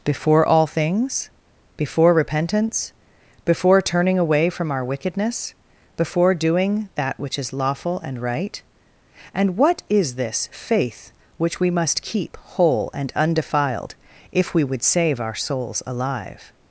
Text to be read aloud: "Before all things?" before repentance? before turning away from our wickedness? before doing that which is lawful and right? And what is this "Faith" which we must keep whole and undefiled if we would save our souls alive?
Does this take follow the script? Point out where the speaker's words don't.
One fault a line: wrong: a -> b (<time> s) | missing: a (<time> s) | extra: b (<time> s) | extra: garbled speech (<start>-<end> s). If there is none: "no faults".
no faults